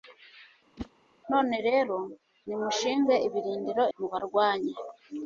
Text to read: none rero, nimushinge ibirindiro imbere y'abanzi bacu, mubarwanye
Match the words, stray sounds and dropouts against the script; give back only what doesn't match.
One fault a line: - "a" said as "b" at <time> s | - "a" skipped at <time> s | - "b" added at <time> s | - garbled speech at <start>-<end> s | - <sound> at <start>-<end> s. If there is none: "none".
- whoosh at 0.8-0.9 s
- "imbere y'abanzi bacu" skipped at 3.8 s